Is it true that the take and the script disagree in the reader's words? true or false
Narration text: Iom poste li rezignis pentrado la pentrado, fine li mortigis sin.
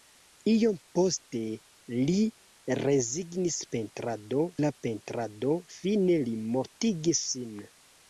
false